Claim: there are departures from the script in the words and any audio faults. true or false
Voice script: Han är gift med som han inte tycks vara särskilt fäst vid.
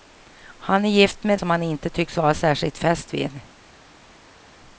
false